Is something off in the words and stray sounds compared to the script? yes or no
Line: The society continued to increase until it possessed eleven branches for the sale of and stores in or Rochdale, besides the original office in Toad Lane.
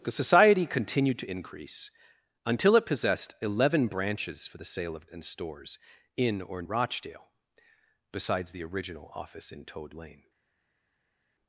no